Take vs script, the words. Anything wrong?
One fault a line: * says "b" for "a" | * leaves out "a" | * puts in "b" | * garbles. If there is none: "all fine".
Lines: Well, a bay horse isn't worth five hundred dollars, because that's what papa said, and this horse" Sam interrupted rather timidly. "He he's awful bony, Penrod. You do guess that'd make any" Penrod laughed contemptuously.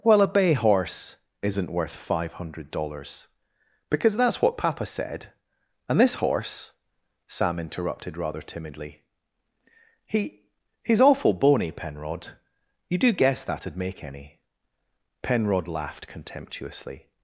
all fine